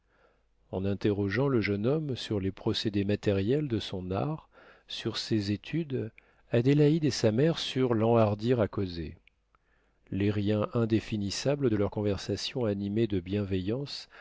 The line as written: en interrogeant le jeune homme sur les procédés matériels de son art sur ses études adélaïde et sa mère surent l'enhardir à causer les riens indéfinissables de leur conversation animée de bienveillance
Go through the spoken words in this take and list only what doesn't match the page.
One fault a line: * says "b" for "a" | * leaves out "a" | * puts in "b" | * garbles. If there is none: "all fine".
all fine